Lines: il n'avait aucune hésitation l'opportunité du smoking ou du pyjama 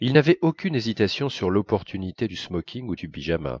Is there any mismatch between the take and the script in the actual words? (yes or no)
yes